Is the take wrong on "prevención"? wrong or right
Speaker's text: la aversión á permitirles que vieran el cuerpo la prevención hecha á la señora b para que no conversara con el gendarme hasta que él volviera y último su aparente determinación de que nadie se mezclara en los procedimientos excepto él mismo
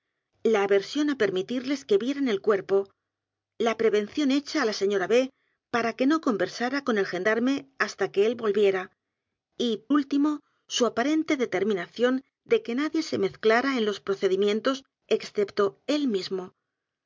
right